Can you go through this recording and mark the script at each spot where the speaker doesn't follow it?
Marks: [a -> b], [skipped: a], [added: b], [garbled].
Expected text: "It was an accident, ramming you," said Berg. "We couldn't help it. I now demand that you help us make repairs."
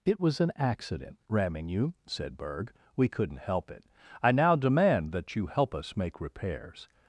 "It was an accident, ramming you," said Berg. "We couldn't help it. I now demand that you help us make repairs."